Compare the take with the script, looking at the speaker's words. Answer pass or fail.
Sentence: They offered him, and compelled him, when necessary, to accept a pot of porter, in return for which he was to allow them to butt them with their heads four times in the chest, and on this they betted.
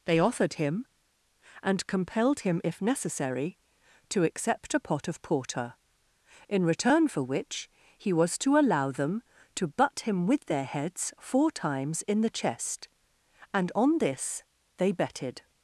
fail